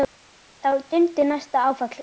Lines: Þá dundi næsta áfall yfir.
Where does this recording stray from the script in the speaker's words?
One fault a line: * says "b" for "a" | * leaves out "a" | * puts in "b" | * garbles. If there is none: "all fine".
all fine